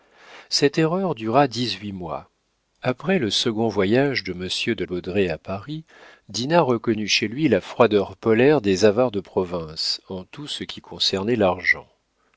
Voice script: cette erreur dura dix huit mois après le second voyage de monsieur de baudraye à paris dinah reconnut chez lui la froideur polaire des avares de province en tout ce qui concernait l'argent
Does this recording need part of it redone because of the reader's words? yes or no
no